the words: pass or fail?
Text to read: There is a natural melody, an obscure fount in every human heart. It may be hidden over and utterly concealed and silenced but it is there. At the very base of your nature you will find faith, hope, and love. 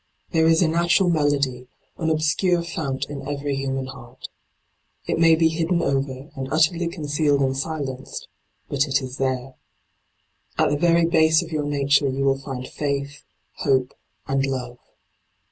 pass